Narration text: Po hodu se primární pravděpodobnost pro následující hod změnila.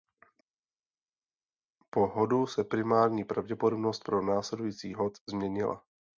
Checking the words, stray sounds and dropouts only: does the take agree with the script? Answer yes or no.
yes